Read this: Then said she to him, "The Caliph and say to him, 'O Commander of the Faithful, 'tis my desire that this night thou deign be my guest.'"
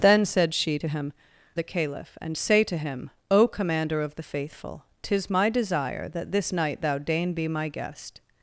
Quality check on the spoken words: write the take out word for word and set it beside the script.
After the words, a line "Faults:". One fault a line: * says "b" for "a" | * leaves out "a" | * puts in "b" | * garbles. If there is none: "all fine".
Then said she to him, "The Caliph and say to him, 'O Commander of the Faithful, 'tis my desire that this night thou deign be my guest.'"
Faults:
all fine